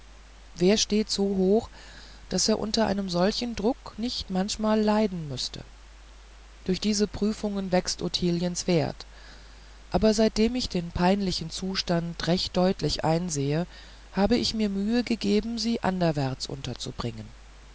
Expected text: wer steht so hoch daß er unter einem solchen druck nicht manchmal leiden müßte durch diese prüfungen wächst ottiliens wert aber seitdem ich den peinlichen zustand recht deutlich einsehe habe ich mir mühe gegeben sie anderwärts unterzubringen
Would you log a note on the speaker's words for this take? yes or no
no